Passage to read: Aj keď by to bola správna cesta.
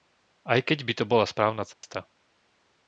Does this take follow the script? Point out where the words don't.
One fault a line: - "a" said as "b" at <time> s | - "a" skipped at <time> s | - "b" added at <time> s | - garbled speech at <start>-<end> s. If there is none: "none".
none